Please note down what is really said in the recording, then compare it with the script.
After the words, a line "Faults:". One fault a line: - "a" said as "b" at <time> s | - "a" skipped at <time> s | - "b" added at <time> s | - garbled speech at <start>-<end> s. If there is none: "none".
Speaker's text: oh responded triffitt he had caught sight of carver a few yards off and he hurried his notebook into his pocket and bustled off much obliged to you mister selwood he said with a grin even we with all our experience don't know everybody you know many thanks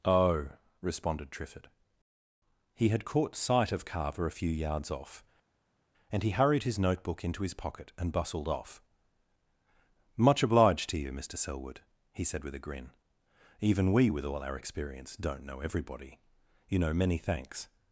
oh responded triffitt he had caught sight of carver a few yards off and he hurried his notebook into his pocket and bustled off much obliged to you mister selwood he said with a grin even we with all our experience don't know everybody you know many thanks
Faults:
none